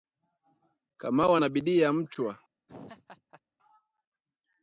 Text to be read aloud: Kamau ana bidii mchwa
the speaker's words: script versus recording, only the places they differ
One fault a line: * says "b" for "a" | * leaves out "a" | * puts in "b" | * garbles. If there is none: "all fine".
* puts in "ya"